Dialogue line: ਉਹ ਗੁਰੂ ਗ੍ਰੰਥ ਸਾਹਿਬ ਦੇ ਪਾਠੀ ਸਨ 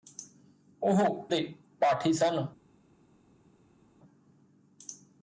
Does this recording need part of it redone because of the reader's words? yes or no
yes